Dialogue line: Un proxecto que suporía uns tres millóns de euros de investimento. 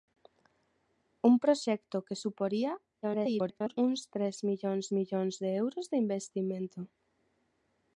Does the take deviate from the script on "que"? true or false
false